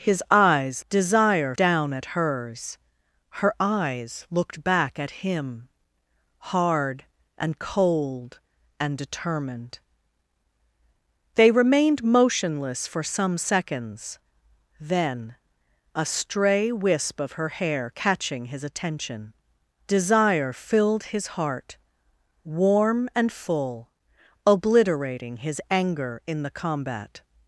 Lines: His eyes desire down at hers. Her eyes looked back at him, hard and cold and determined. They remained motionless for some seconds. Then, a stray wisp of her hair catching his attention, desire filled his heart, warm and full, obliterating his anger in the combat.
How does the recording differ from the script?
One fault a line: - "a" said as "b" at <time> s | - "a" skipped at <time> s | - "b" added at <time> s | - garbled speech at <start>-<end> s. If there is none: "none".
none